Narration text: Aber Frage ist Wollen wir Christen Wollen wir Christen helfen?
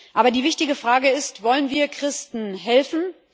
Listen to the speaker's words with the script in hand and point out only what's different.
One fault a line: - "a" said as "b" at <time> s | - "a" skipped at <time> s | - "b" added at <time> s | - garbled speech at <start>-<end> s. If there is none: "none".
- "die wichtige" added at 0.3 s
- "Wollen wir Christen" skipped at 2.5 s